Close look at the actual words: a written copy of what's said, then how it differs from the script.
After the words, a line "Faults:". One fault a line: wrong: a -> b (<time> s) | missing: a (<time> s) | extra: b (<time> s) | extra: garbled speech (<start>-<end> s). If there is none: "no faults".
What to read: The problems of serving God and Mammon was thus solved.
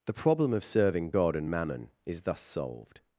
The problem of serving God and Mammon is thus solved.
Faults:
wrong: problems -> problem (0.1 s)
wrong: was -> is (2.0 s)